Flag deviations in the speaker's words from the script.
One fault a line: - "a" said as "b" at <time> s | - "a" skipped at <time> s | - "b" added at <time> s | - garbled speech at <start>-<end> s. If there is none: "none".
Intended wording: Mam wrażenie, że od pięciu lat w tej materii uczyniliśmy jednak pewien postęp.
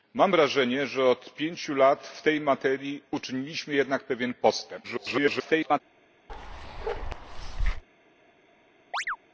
- garbled speech at 4.8-5.8 s